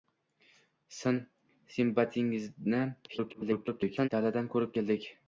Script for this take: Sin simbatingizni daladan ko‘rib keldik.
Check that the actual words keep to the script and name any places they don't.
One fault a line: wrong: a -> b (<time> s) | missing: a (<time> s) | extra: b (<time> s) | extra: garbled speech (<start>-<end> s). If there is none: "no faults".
extra: garbled speech (3.1-4.1 s)